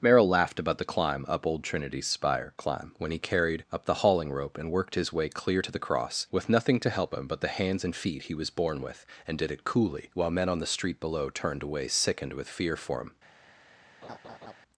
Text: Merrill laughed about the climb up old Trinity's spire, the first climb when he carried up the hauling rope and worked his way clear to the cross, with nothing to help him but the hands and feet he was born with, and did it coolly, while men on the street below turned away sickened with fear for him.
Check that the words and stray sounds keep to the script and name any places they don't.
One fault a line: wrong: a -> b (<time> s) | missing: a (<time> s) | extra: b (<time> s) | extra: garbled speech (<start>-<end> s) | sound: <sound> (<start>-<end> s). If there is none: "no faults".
missing: the first (2.5 s)
sound: laugh (14.0-14.6 s)